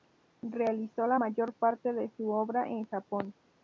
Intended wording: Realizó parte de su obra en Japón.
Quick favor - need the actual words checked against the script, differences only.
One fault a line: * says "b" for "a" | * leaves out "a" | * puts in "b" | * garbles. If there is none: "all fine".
* puts in "la mayor"